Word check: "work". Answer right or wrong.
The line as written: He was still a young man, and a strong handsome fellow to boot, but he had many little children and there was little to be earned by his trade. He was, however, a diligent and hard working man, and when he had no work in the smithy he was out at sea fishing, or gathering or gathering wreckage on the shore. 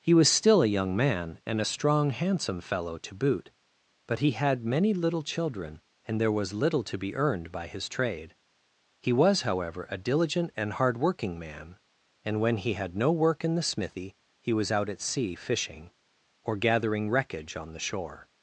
right